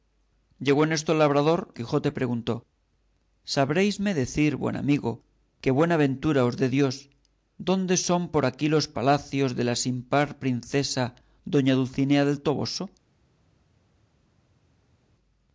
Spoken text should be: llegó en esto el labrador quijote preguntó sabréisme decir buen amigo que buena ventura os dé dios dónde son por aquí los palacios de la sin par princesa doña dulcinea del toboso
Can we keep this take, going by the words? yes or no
yes